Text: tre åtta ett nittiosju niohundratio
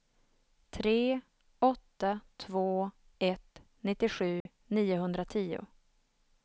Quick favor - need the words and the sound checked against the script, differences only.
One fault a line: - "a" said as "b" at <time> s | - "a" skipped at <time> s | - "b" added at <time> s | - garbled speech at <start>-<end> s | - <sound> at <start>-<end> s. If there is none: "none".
- "två" added at 2.4 s
- dropout at 4.4-4.5 s